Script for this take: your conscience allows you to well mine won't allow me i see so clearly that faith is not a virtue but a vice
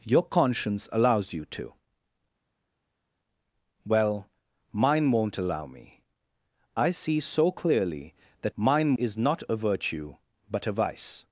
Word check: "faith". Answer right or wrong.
wrong